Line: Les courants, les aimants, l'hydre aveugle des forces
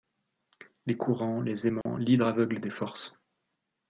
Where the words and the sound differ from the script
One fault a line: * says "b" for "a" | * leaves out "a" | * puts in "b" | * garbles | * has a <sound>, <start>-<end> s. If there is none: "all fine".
* has a dropout, 1.8-1.9 s